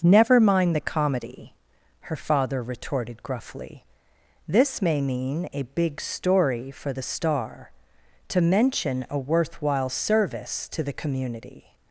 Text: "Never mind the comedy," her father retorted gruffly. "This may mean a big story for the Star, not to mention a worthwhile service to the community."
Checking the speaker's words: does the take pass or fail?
fail